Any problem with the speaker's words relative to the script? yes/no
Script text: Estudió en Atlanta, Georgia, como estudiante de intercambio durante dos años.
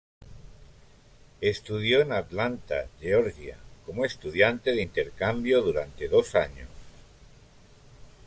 no